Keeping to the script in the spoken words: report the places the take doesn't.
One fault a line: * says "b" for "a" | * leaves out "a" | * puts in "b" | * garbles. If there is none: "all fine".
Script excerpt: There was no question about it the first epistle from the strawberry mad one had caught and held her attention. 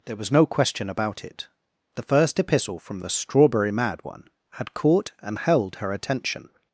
all fine